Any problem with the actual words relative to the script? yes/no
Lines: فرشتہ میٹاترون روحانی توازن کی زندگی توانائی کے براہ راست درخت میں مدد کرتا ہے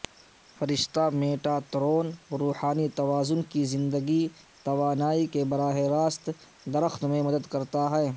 no